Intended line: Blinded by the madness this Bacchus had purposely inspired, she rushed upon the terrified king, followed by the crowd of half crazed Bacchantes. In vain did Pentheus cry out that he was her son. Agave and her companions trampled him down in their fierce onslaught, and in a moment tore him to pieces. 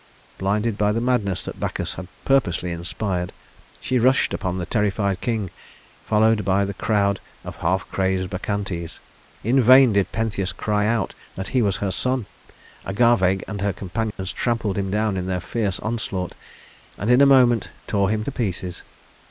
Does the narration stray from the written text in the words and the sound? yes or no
yes